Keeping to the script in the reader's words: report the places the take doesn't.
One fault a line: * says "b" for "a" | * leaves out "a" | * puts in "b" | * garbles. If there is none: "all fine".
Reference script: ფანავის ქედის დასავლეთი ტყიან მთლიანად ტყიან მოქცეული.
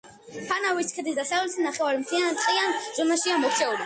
* says "ნახევარი" for "ტყიან"
* puts in "ზონაშია"